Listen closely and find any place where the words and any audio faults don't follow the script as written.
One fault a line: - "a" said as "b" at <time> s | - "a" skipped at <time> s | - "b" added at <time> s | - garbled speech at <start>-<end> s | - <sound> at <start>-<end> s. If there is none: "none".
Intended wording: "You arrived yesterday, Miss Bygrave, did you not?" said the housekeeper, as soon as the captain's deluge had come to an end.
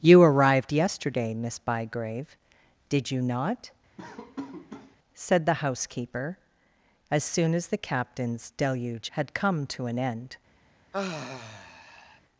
- laugh at 4.0-5.0 s
- sigh at 10.9-12.2 s